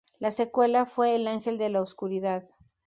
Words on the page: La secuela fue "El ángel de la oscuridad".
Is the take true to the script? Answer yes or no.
yes